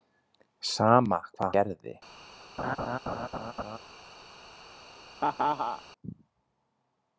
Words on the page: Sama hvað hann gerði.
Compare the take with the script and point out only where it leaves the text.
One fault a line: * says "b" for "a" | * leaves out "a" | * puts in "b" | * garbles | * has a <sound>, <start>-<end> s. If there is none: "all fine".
* leaves out "hann"
* has a laugh, 2.6-3.8 s
* has a laugh, 5.2-5.8 s